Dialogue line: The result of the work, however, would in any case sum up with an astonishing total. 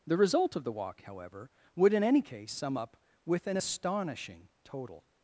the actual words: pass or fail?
fail